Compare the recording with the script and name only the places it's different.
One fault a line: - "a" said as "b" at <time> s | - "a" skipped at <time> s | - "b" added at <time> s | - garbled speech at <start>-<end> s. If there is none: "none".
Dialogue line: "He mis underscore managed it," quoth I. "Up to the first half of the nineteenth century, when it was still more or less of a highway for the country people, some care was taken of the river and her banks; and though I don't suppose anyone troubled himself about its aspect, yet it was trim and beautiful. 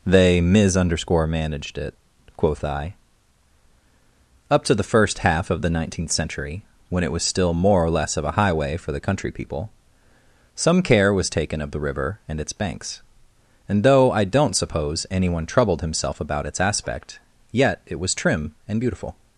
- "He" said as "They" at 0.1 s
- "her" said as "its" at 12.4 s